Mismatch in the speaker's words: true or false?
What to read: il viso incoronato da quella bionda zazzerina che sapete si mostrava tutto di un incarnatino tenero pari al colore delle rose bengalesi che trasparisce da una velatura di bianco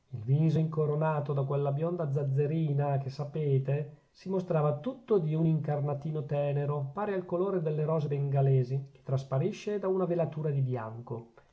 false